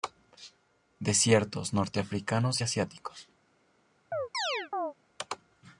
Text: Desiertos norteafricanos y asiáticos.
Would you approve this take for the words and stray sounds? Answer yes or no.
no